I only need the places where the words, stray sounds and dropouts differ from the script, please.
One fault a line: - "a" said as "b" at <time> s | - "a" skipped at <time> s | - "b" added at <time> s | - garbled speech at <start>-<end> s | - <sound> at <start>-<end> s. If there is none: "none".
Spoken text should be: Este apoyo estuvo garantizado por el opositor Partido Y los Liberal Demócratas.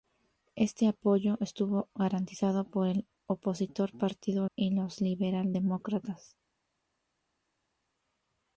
none